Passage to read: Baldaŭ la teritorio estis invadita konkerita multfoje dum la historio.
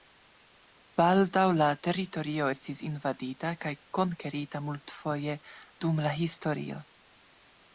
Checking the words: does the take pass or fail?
fail